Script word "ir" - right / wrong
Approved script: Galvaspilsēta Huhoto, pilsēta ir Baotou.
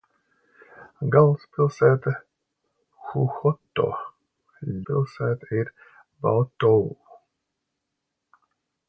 right